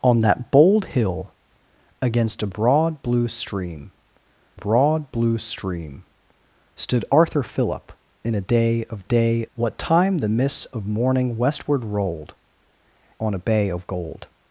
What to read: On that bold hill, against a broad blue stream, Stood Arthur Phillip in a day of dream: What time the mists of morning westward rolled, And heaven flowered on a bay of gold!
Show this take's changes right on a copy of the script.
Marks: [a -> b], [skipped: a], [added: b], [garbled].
On that bold hill, against a broad blue stream, [added: broad blue stream] Stood Arthur Phillip in a day of [dream: -> day] What time the mists of morning westward rolled, [skipped: And heaven flowered] on a bay of gold!